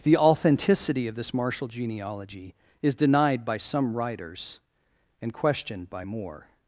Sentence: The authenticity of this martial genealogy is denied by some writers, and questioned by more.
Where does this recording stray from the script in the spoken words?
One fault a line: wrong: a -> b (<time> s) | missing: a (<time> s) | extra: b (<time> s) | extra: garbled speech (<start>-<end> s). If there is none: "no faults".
no faults